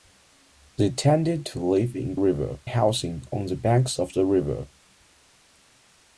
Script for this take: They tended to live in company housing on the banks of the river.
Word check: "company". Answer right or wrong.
wrong